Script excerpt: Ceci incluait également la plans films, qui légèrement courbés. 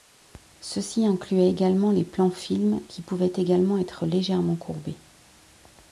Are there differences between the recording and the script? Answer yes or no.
yes